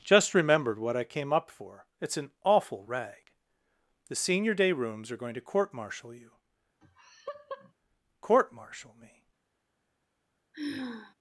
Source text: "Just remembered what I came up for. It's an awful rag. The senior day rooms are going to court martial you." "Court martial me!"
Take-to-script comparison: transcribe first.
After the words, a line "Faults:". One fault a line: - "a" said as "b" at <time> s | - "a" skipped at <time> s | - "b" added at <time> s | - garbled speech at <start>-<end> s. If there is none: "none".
"Just remembered what I came up for. It's an awful rag. The senior day rooms are going to court martial you." "Court martial me!"
Faults:
none